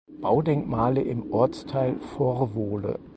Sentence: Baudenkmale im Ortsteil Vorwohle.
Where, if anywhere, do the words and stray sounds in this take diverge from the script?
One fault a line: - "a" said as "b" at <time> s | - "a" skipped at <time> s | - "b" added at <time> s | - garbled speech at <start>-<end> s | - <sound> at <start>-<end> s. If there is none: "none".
none